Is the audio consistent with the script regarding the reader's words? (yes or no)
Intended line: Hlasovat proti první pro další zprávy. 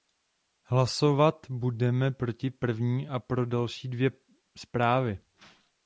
no